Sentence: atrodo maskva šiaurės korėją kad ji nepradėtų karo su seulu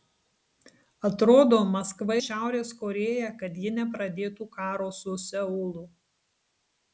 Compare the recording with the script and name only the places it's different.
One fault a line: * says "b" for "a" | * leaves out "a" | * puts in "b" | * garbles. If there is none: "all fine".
all fine